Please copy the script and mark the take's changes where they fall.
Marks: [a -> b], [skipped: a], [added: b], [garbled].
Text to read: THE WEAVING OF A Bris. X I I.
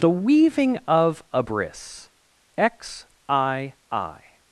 THE WEAVING OF A Bris. X I I.